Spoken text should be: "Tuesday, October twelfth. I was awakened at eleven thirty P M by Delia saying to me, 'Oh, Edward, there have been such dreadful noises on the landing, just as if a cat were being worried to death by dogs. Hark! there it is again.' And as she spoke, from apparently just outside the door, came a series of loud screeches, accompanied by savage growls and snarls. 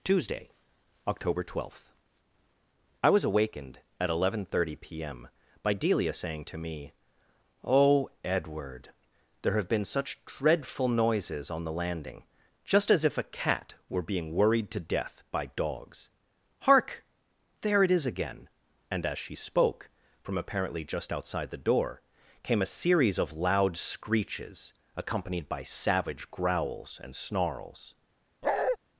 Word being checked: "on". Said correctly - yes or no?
yes